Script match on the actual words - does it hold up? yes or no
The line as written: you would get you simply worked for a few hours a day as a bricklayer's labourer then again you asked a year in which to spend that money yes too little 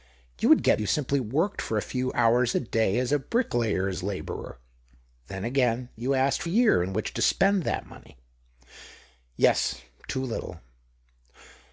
yes